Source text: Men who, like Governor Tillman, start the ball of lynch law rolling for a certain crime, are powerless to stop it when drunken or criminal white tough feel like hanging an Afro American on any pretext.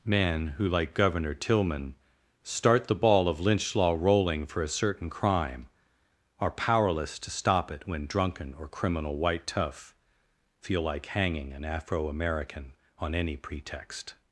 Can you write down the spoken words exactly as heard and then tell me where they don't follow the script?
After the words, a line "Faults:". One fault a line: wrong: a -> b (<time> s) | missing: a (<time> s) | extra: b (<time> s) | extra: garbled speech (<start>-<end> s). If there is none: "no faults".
Men who, like Governor Tillman, start the ball of lynch law rolling for a certain crime, are powerless to stop it when drunken or criminal white tough feel like hanging an Afro American on any pretext.
Faults:
no faults